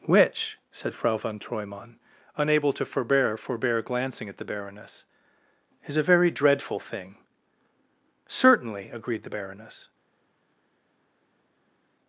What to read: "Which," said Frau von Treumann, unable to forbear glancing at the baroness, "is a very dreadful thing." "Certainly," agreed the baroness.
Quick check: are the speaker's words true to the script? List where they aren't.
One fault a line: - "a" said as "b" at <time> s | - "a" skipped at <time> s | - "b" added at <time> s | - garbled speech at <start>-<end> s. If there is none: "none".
- "forbear" added at 3.4 s